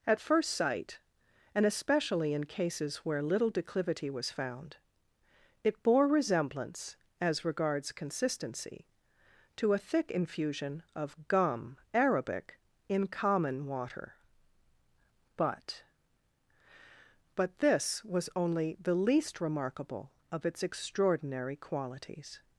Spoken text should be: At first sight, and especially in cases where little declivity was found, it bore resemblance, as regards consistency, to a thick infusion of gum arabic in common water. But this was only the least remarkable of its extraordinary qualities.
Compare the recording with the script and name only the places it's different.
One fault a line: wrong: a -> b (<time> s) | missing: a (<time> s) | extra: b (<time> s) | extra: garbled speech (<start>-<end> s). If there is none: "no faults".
extra: But (17.4 s)